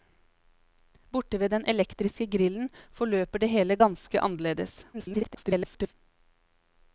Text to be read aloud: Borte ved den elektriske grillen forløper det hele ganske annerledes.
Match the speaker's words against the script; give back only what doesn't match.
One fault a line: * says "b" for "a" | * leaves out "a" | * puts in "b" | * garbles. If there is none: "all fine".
* garbles